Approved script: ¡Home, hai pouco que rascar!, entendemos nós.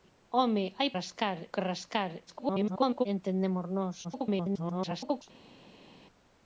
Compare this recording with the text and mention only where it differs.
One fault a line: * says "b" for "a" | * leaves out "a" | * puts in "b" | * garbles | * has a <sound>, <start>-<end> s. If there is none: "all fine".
* says "rascar" for "pouco"
* garbles
* garbles